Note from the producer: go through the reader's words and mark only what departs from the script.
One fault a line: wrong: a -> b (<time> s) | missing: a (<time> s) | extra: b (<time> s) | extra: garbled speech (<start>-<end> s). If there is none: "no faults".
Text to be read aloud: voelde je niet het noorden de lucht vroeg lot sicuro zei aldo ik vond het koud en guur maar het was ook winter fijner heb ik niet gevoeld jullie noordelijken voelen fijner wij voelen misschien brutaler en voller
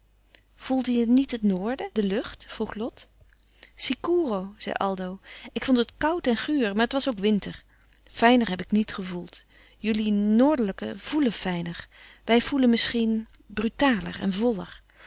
no faults